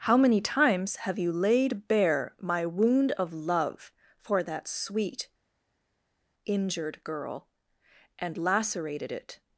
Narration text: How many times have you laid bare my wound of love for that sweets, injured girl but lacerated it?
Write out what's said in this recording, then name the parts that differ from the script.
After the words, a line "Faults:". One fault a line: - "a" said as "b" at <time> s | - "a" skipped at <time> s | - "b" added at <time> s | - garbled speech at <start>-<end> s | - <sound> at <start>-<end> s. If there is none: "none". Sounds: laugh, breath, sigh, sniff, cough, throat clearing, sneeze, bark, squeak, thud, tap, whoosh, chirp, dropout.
How many times have you laid bare my wound of love for that sweet, injured girl and lacerated it?
Faults:
- "sweets" said as "sweet" at 4.7 s
- "but" said as "and" at 8.2 s